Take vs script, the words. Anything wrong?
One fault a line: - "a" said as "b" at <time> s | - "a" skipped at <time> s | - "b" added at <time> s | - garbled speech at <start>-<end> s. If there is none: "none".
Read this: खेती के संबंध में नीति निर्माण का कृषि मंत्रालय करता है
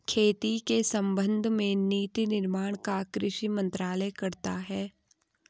none